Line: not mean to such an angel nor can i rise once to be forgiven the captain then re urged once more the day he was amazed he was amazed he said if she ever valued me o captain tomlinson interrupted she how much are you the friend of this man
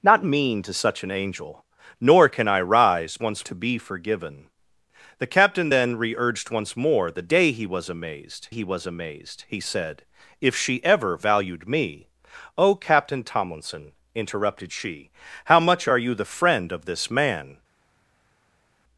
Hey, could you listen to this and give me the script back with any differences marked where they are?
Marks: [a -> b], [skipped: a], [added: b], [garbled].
not mean to such an angel nor can i rise once to be forgiven the captain then re urged once more the day he was amazed he was amazed he said if she ever valued me o captain tomlinson interrupted she how much are you the friend of this man